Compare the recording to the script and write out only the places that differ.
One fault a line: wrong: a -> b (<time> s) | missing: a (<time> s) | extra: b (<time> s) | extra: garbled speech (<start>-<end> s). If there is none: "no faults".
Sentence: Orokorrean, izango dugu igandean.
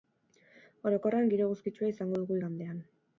extra: giro eguzkitsua (1.3 s)